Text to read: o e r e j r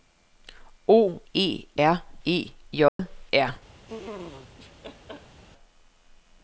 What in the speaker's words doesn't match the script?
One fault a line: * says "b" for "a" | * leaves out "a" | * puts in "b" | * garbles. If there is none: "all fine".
all fine